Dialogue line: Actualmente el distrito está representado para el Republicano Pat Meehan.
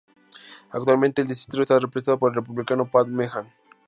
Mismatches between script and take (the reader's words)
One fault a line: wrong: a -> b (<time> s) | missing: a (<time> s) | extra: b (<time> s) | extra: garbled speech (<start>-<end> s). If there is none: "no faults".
wrong: para -> por (2.2 s)